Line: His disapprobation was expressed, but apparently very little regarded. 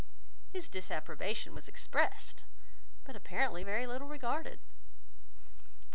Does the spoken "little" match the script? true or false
true